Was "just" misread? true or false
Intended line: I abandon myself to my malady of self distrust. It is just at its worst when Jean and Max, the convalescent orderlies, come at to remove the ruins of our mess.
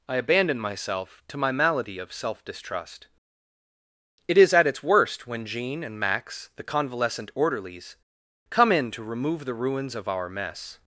true